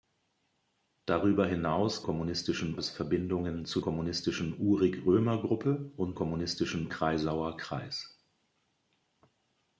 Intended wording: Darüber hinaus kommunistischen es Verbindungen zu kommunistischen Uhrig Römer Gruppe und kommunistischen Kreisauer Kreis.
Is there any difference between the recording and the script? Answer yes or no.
no